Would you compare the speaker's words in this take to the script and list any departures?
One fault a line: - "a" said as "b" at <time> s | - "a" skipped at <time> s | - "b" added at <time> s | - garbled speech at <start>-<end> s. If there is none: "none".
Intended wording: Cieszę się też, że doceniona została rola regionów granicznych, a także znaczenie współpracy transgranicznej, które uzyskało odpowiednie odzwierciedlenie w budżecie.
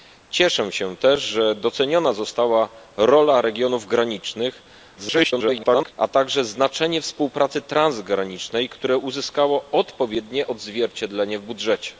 - garbled speech at 5.0-5.9 s